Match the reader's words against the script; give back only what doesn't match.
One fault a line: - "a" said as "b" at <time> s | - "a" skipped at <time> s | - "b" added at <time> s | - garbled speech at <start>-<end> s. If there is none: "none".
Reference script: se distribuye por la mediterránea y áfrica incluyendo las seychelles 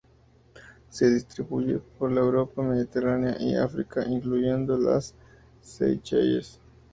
- "europa" added at 2.2 s